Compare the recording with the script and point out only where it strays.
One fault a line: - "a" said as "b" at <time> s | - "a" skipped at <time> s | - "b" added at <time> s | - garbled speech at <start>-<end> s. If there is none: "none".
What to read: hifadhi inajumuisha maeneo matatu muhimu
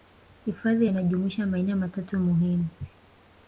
none